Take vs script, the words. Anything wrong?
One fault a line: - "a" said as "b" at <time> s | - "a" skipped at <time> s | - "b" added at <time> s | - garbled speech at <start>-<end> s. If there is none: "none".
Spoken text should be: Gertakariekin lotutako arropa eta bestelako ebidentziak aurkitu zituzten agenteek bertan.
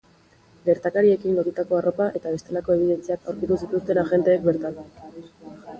none